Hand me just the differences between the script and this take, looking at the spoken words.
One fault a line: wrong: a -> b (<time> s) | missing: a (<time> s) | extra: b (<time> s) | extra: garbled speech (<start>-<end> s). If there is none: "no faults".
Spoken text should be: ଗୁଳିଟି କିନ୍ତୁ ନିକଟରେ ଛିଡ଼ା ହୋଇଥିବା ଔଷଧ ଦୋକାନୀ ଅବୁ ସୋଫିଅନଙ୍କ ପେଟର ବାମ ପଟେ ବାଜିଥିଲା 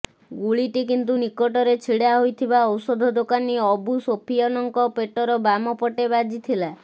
no faults